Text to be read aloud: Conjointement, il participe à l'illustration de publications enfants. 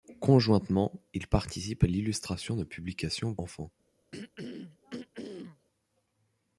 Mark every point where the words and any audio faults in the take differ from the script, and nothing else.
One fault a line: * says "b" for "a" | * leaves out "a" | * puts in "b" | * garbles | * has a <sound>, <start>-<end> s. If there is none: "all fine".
* has a throat clearing, 4.1-5.7 s